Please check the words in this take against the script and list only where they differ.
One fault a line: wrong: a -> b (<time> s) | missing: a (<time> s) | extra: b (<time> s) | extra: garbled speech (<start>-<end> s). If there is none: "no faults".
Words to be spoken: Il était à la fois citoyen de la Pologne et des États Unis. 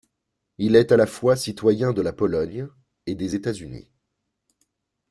wrong: était -> est (0.8 s)